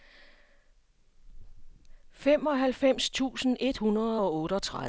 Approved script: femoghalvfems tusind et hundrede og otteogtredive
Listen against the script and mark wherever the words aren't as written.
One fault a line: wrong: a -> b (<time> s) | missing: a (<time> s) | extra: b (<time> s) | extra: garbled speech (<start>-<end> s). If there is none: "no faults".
no faults